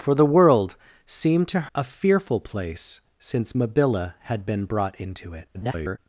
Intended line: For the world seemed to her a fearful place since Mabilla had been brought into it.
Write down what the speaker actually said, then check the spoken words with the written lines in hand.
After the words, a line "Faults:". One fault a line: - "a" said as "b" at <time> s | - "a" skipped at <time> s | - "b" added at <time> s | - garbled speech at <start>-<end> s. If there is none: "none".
For the world seemed to a fearful place since Mabilla had been brought into it. [garbled]
Faults:
- "her" skipped at 1.7 s
- garbled speech at 5.5-6.0 s